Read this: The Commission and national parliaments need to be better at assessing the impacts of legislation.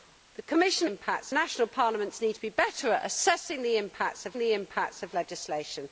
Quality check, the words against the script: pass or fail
fail